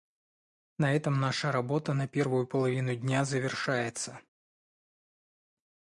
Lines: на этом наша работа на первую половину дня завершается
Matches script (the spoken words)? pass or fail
pass